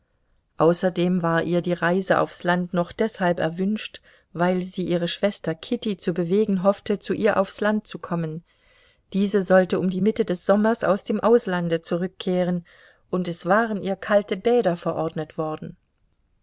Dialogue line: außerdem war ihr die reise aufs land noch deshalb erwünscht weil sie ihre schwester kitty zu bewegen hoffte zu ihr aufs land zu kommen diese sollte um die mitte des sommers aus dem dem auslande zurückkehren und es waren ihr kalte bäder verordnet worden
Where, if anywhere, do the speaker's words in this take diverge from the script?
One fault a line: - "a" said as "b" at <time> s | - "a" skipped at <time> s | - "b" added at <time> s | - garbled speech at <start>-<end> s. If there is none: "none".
- "dem" skipped at 11.2 s